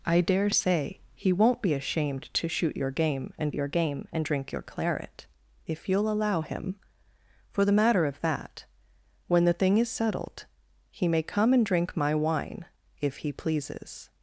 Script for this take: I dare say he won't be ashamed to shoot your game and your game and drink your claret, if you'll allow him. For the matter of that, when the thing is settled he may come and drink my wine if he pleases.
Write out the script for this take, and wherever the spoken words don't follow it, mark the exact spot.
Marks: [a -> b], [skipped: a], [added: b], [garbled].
I dare say he won't be ashamed to shoot your game and your game and drink your claret, if you'll allow him. For the matter of that, when the thing is settled he may come and drink my wine if he pleases.